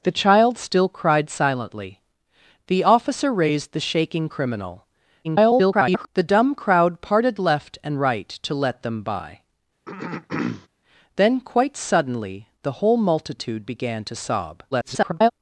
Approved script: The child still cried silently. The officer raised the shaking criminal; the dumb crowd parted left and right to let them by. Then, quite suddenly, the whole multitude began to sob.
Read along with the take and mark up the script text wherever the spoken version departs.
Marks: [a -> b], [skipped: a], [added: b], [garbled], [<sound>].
The child still cried silently. The officer raised the shaking criminal; [garbled] the dumb crowd parted left and right to let them by. [throat clearing] Then, quite suddenly, the whole multitude began to sob. [garbled]